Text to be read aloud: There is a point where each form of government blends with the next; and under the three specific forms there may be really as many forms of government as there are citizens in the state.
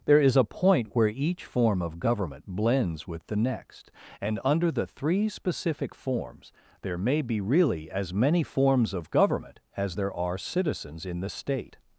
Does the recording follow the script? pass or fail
pass